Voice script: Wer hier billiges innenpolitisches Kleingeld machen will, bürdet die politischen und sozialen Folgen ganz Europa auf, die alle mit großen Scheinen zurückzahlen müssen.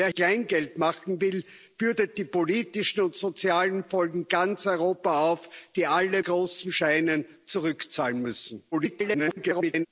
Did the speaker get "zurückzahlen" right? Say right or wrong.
right